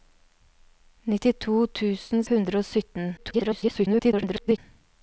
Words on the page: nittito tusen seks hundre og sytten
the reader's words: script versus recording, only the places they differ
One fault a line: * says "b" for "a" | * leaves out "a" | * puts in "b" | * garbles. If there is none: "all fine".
* leaves out "seks"
* garbles